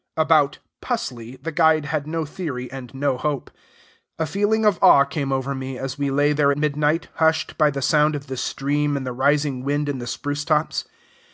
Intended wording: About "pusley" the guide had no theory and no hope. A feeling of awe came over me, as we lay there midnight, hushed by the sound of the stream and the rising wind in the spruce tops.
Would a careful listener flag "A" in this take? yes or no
no